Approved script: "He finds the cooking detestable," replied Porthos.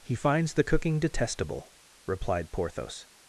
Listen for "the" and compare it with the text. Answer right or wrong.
right